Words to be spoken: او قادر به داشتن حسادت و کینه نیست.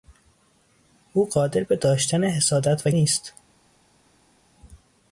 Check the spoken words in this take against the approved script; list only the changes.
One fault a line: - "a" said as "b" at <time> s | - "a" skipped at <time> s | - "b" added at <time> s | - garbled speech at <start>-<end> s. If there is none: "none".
- "کینه" skipped at 2.9 s